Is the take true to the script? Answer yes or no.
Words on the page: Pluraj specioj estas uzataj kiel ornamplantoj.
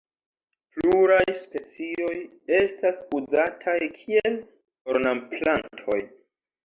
yes